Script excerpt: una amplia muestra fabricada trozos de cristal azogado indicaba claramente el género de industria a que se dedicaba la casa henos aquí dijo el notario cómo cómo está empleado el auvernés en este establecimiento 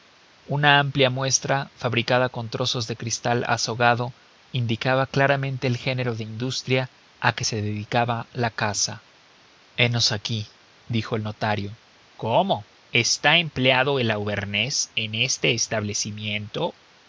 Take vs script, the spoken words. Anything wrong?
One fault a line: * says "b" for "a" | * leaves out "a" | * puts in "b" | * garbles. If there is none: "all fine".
* puts in "con"
* leaves out "cómo"